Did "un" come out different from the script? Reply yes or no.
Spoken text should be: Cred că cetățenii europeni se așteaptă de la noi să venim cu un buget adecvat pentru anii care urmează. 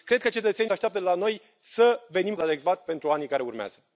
yes